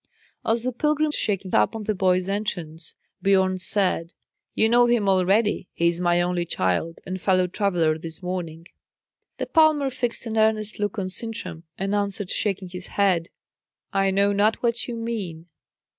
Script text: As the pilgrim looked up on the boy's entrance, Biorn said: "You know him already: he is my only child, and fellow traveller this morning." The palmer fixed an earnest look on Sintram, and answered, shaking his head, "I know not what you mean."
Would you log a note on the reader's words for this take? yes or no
yes